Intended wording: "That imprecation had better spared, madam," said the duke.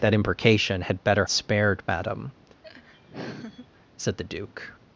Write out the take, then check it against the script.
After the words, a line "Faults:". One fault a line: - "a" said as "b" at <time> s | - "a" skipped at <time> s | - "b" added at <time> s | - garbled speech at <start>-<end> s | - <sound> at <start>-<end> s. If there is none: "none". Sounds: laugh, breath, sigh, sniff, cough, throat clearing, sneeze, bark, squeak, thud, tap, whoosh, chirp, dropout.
"That imprecation had better spared, madam," said the duke.
Faults:
- laugh at 2.6-3.7 s